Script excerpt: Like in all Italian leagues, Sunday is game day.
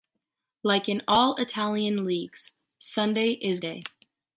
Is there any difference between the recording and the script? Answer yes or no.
yes